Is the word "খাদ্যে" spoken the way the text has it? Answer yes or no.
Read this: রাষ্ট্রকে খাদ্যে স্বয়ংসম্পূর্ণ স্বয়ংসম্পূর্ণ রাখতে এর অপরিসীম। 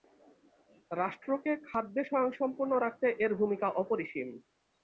yes